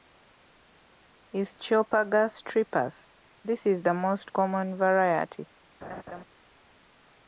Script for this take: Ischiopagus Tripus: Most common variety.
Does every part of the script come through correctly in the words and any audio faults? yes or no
no